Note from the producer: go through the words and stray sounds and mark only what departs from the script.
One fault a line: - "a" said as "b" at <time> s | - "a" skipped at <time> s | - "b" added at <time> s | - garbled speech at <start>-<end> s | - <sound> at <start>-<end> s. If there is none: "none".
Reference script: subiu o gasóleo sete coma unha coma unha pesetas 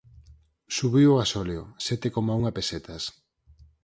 - "coma unha" skipped at 2.5 s